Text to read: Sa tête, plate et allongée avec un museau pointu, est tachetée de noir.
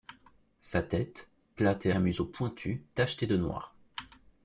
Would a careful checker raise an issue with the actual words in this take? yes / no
yes